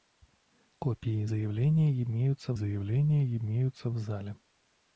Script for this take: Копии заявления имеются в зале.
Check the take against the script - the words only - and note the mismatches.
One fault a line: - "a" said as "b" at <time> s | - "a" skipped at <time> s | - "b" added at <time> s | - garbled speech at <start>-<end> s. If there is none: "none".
- "заявления имеются" added at 2.5 s